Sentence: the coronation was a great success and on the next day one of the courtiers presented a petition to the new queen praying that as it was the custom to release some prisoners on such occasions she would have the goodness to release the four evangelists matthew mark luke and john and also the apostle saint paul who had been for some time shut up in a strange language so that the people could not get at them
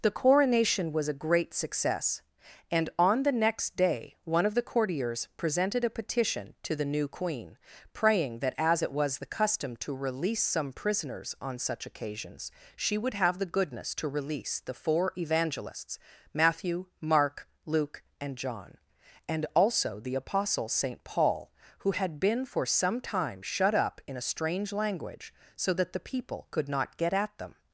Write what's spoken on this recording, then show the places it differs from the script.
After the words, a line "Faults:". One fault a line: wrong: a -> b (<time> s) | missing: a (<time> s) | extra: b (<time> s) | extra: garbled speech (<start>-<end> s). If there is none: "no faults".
the coronation was a great success and on the next day one of the courtiers presented a petition to the new queen praying that as it was the custom to release some prisoners on such occasions she would have the goodness to release the four evangelists matthew mark luke and john and also the apostle saint paul who had been for some time shut up in a strange language so that the people could not get at them
Faults:
no faults